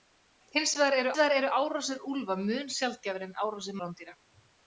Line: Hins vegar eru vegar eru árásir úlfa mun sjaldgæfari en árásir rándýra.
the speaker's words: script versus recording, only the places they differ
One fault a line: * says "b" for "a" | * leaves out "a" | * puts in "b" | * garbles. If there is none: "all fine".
all fine